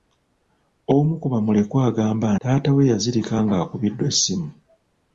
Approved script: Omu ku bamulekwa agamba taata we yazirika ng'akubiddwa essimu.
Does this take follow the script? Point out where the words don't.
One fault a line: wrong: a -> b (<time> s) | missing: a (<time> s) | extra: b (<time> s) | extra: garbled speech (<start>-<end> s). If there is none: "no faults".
no faults